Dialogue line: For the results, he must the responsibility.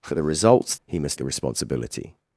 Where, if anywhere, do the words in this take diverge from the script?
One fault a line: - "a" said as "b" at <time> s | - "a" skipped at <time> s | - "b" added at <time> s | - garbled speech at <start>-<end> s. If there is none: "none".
none